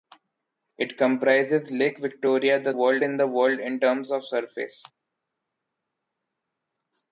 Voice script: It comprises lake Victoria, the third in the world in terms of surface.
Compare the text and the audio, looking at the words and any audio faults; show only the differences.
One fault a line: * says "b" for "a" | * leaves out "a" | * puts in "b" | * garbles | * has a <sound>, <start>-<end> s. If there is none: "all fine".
* says "world" for "third"